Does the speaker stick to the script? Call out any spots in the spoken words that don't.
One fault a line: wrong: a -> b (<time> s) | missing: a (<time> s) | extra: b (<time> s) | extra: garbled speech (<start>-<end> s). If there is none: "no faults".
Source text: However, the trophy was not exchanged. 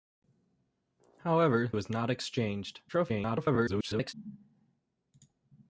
missing: the trophy (1.7 s)
extra: garbled speech (2.9-4.1 s)